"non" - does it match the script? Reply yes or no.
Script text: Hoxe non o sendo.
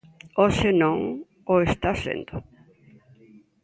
yes